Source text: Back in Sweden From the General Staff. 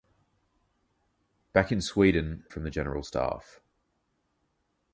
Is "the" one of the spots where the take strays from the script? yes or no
no